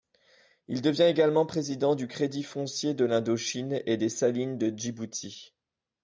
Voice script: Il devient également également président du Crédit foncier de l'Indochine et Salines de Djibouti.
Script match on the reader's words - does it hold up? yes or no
no